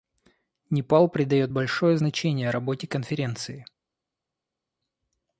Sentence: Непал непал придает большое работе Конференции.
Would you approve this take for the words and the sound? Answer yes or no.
no